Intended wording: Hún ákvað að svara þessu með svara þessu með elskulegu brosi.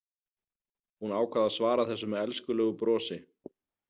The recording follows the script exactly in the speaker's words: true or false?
false